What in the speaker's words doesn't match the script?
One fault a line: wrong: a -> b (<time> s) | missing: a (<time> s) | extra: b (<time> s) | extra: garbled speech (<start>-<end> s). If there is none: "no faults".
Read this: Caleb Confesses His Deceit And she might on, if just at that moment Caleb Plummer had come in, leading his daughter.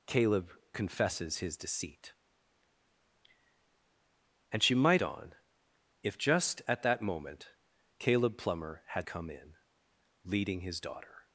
no faults